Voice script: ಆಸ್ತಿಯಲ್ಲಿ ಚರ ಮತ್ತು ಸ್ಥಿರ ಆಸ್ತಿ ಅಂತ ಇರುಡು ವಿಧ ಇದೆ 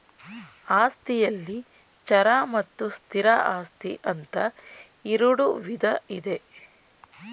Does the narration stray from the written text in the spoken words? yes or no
no